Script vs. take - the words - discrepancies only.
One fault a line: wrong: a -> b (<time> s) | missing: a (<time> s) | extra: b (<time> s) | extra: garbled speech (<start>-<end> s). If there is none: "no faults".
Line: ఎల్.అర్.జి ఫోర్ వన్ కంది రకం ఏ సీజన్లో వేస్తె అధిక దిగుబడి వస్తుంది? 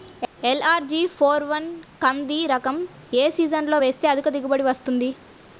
no faults